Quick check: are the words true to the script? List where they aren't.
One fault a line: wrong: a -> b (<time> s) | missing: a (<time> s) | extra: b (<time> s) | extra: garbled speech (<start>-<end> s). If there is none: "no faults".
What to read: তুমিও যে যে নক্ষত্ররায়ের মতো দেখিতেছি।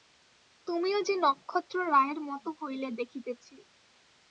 missing: যে (1.1 s)
extra: হইলে (2.6 s)